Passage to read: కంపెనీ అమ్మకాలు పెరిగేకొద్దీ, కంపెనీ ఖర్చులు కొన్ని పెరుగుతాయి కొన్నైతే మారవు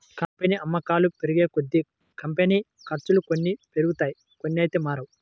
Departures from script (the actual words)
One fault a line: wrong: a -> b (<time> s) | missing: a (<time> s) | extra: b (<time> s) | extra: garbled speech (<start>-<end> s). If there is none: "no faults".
no faults